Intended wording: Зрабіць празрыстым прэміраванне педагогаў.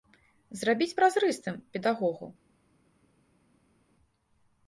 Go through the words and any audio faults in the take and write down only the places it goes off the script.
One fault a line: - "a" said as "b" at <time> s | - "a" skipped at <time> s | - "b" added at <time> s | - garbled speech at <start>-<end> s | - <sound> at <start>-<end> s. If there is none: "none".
- "прэміраванне" skipped at 1.6 s